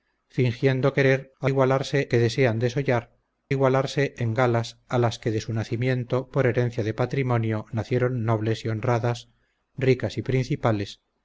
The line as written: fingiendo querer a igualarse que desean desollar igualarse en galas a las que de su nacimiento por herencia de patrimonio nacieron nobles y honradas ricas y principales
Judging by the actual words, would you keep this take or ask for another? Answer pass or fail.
pass